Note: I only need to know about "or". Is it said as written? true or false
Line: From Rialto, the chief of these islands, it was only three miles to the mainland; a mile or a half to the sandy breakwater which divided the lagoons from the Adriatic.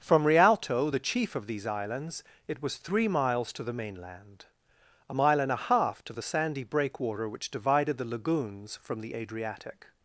false